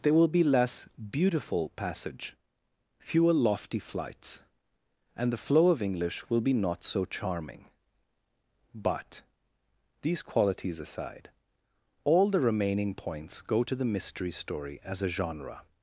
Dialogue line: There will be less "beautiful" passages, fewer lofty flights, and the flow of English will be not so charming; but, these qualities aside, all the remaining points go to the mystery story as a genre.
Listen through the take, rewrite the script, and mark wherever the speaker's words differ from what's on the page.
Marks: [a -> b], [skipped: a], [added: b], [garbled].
There will be less "beautiful" [passages, -> passage] fewer lofty flights, and the flow of English will be not so charming; but, these qualities aside, all the remaining points go to the mystery story as a genre.